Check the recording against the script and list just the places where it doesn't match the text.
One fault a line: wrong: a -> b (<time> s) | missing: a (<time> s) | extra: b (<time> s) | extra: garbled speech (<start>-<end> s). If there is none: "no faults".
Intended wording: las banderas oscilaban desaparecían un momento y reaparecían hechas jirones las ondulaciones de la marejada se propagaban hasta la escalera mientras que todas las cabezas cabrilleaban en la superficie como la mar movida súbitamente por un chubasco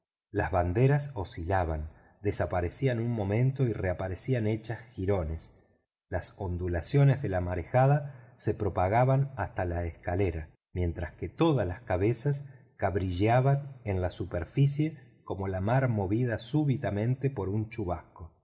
no faults